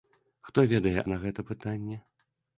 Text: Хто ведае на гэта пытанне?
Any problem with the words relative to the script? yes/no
no